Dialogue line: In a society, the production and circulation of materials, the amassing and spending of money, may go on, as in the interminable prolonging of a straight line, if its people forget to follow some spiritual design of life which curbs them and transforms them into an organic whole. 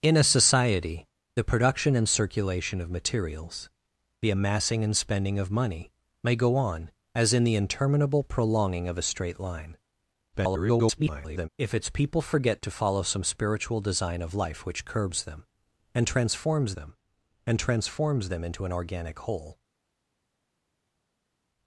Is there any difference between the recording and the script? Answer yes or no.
yes